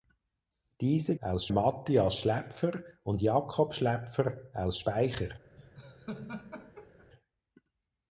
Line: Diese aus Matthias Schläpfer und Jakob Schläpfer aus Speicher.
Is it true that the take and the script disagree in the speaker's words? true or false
false